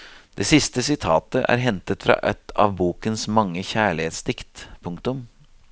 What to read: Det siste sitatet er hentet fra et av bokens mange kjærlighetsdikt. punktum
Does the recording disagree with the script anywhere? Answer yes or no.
no